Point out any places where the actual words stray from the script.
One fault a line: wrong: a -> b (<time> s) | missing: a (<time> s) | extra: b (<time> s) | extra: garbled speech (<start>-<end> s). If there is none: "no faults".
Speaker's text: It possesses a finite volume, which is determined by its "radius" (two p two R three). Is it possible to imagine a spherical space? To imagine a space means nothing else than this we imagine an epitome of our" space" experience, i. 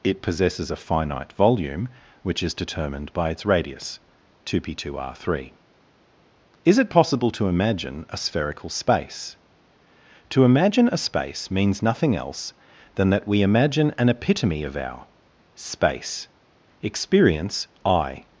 wrong: this -> that (13.1 s)